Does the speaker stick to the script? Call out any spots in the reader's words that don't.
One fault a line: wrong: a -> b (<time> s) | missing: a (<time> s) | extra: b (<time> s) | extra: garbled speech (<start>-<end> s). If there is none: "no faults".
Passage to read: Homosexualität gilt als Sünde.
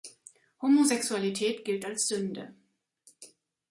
no faults